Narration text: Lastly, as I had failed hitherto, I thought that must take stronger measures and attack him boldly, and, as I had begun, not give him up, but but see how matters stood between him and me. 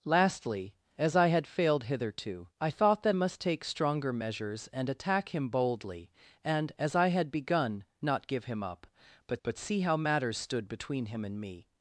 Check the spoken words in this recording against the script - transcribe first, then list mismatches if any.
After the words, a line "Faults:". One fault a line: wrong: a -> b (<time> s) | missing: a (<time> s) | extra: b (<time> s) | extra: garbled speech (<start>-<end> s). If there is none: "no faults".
Lastly, as I had failed hitherto, I thought that must take stronger measures and attack him boldly, and, as I had begun, not give him up, but but see how matters stood between him and me.
Faults:
no faults